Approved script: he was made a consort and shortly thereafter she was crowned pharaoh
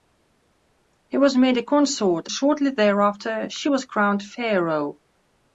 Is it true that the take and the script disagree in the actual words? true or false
true